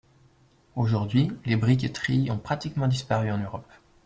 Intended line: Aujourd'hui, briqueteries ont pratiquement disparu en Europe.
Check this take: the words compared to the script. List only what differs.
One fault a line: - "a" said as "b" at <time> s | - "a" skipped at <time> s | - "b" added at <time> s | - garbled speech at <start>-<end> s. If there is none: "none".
- "les" added at 1.4 s